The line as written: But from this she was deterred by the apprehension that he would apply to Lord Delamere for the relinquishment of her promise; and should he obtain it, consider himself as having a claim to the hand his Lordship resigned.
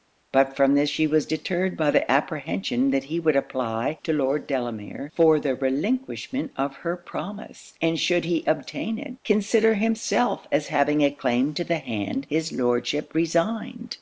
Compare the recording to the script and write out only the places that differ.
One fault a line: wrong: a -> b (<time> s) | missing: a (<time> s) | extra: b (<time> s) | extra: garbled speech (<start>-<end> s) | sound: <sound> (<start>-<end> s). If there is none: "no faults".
no faults